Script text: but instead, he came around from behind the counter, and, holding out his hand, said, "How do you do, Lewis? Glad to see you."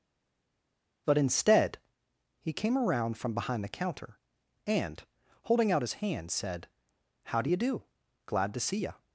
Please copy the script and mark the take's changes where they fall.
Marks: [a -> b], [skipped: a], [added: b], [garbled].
but instead, he came around from behind the counter, and, holding out his hand, said, "How do you do, [skipped: Lewis?] Glad to see you."